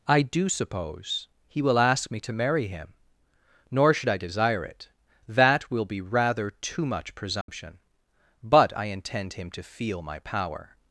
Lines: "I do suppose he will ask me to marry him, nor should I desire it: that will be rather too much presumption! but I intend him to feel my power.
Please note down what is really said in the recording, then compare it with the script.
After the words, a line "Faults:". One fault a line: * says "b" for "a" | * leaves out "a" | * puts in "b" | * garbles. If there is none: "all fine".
"I do suppose he will ask me to marry him, nor should I desire it: that will be rather too much presumption! but I intend him to feel my power.
Faults:
all fine